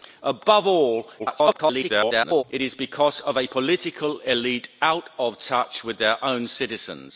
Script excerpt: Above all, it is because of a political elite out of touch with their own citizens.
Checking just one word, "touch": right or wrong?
right